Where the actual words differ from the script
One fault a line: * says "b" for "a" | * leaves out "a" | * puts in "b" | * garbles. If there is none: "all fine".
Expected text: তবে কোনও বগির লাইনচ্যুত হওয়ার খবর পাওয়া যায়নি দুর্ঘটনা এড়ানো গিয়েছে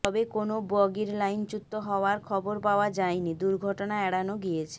all fine